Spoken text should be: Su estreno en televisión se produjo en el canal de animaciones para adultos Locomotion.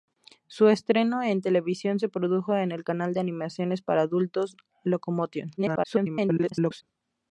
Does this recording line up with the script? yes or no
no